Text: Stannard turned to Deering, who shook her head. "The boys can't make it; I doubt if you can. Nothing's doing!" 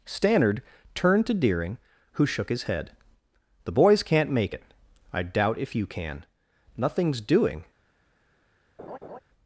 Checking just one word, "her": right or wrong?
wrong